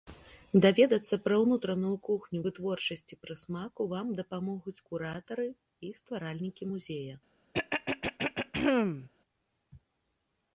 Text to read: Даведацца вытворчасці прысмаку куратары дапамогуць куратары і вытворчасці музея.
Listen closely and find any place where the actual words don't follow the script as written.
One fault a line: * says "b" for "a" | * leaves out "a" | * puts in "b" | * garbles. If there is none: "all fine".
* puts in "пра ўнутраную кухню"
* says "вам" for "куратары"
* says "стваральнікі" for "вытворчасці"